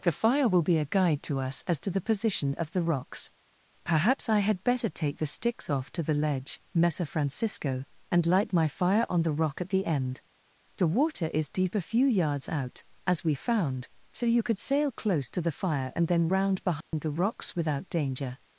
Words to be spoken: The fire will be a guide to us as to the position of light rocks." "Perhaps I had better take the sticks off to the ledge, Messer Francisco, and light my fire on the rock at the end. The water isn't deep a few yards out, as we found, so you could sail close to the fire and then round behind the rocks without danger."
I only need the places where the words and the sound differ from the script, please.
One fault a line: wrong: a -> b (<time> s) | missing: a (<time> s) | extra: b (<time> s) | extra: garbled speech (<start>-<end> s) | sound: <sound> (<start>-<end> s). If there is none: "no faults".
wrong: light -> the (2.7 s)
wrong: isn't -> is (11.3 s)
sound: dropout (16.8-16.9 s)